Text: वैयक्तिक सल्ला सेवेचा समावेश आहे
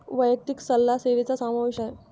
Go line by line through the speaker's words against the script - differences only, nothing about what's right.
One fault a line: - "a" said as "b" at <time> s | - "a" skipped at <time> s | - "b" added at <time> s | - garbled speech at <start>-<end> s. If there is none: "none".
none